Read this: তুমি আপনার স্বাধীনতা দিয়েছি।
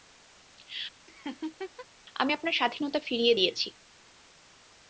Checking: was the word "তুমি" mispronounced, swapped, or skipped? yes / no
yes